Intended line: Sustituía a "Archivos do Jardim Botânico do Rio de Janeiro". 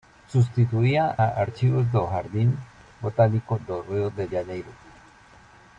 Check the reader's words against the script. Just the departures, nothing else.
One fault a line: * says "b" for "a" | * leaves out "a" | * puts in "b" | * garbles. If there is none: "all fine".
all fine